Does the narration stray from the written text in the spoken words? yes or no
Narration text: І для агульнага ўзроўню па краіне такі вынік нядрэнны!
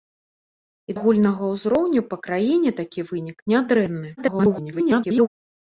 yes